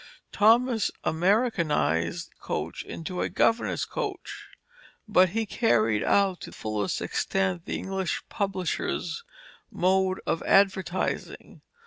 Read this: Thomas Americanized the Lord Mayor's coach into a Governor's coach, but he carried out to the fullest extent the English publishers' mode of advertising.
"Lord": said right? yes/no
no